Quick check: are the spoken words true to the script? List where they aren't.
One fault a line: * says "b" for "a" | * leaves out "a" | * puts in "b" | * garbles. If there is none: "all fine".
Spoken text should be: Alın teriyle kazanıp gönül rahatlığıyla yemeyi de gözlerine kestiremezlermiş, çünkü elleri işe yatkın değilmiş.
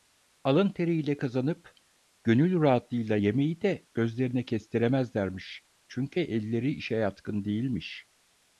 all fine